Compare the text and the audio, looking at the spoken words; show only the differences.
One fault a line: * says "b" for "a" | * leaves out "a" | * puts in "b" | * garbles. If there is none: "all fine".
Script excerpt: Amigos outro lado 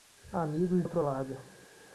all fine